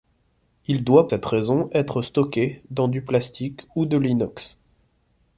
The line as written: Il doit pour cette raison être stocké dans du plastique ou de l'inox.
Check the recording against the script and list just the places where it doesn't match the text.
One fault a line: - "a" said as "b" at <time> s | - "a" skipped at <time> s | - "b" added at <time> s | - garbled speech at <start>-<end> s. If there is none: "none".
- "pour" skipped at 1.1 s